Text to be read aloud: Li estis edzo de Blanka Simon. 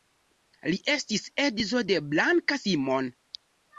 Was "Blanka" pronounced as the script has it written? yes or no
yes